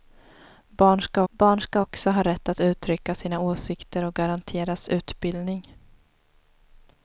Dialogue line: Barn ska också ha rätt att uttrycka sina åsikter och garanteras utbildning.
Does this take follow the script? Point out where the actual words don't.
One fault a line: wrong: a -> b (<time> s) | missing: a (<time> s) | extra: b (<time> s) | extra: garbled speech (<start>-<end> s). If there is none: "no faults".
extra: barn ska (1.3 s)